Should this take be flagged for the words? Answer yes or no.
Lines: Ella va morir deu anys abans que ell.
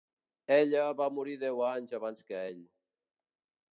no